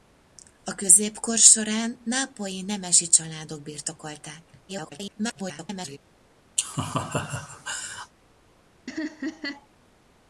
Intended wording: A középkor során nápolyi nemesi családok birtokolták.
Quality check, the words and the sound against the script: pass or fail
fail